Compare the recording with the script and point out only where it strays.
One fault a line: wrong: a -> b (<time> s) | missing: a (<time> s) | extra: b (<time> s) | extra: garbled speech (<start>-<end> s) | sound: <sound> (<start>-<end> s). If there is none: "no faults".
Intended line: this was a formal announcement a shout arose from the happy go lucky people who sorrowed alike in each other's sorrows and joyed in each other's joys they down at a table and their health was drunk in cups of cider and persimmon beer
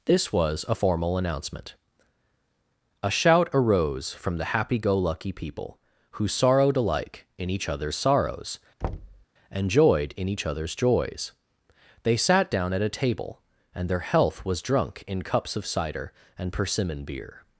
sound: thud (8.8-9.3 s)
extra: sat (12.2 s)